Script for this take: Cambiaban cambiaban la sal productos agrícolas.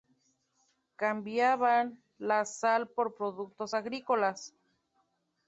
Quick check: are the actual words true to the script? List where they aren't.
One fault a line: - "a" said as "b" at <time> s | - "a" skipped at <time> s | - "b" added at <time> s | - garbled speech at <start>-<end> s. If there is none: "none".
- "cambiaban" skipped at 2.0 s
- "por" added at 2.9 s